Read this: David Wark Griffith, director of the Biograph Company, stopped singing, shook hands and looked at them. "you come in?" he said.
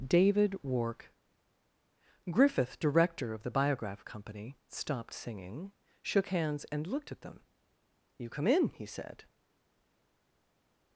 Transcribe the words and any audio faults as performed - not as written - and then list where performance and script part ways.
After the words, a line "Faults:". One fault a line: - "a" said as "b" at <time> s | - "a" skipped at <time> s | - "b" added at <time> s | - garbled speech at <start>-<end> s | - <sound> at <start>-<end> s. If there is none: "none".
David Wark Griffith, director of the Biograph Company, stopped singing, shook hands and looked at them. "you come in?" he said.
Faults:
none